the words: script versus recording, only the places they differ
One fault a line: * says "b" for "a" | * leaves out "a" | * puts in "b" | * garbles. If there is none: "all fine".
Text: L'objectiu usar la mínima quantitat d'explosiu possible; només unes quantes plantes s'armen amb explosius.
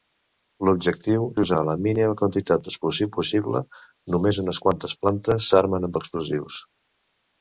all fine